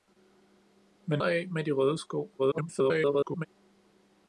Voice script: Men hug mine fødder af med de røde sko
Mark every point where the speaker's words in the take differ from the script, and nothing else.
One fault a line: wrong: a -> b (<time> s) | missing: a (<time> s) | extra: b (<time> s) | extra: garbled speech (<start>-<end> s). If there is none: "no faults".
missing: hug mine fødder (1.2 s)
extra: garbled speech (2.4-3.5 s)